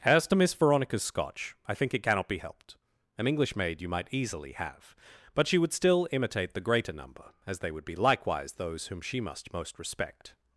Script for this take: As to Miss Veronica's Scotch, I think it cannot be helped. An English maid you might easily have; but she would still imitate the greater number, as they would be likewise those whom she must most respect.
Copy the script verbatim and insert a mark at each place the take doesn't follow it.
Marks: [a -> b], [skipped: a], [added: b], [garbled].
As to Miss Veronica's Scotch, I think it cannot be helped. An English maid you might easily have; but she would still imitate the greater number, as they would be likewise those whom she must most respect.